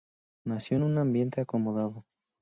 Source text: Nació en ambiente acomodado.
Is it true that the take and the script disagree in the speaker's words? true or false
true